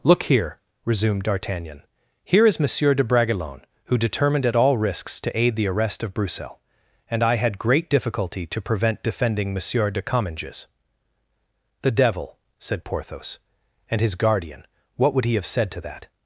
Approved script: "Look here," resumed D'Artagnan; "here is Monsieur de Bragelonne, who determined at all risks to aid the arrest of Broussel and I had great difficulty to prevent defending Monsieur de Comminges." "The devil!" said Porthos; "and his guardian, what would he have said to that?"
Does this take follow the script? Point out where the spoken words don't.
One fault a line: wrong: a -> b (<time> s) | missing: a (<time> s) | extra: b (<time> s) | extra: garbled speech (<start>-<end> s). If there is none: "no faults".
no faults